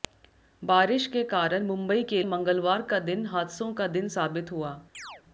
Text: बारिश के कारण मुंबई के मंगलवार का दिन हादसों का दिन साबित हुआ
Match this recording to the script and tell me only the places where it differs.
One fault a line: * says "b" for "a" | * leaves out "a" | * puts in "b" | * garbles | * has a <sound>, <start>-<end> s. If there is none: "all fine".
* has a chirp, 4.9-5.2 s